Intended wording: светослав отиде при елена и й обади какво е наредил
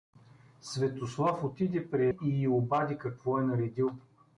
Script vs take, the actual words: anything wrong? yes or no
yes